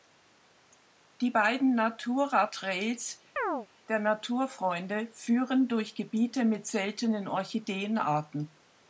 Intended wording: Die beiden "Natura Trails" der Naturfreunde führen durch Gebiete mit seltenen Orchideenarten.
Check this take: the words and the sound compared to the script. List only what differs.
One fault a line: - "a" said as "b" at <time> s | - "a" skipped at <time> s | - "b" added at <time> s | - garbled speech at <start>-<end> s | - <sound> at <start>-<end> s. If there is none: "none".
- chirp at 3.4-3.7 s